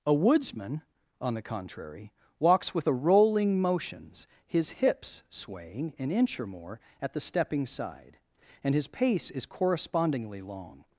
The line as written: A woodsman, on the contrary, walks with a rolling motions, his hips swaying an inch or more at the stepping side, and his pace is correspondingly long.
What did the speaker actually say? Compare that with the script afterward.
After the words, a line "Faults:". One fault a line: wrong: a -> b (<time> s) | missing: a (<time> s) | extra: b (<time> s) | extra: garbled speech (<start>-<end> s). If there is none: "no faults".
A woodsman, on the contrary, walks with a rolling motions, his hips swaying an inch or more at the stepping side, and his pace is correspondingly long.
Faults:
no faults